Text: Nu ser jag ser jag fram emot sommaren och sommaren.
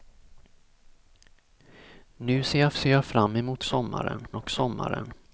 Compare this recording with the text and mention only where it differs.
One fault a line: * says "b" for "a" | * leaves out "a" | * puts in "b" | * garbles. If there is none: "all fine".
all fine